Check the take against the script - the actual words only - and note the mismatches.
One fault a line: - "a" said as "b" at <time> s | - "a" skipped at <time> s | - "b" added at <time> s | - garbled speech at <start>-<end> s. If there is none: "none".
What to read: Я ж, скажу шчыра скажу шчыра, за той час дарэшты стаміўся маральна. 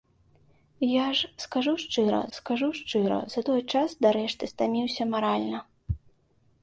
none